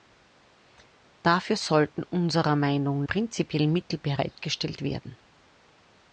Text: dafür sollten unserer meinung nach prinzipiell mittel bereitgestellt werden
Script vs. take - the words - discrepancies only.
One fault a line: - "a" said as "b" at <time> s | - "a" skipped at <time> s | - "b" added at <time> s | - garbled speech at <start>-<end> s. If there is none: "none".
- "nach" skipped at 3.0 s